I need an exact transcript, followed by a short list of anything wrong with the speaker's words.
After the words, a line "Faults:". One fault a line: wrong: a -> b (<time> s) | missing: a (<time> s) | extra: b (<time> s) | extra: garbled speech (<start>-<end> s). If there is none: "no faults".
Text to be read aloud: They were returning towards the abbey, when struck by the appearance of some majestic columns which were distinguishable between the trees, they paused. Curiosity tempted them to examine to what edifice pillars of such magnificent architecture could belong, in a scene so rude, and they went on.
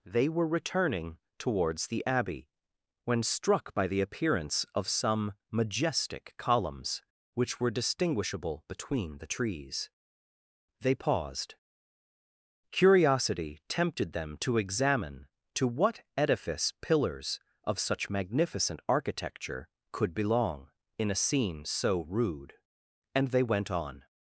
They were returning towards the abbey, when struck by the appearance of some majestic columns which were distinguishable between the trees, they paused. Curiosity tempted them to examine to what edifice pillars of such magnificent architecture could belong, in a scene so rude, and they went on.
Faults:
no faults